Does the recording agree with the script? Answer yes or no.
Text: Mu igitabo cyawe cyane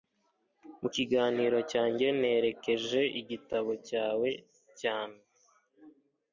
no